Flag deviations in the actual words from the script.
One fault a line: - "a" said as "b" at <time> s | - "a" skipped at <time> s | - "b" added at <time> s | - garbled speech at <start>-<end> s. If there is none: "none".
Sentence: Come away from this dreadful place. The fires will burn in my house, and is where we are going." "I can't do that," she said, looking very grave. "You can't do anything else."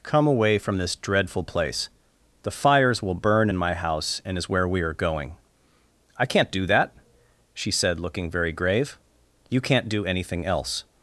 none